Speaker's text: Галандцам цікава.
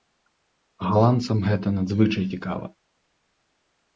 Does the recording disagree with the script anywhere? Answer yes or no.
yes